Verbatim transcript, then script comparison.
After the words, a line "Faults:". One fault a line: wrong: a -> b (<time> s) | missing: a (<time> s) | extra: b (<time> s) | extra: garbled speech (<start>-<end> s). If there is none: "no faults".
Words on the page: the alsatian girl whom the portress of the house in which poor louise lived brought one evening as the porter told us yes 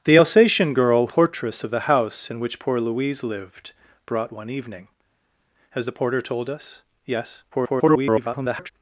the alsatian girl portress of the house in which poor louise lived brought one evening as the porter told us yes [garbled]
Faults:
missing: whom the (1.1 s)
extra: garbled speech (7.5-8.7 s)